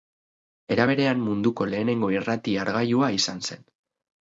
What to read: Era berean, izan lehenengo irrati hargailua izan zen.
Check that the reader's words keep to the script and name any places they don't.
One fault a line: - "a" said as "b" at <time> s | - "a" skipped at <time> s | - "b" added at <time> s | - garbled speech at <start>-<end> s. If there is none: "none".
- "izan" said as "munduko" at 1.3 s